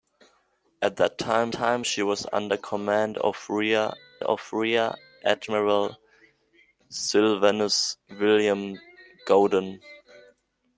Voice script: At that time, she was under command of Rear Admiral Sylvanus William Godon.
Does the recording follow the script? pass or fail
fail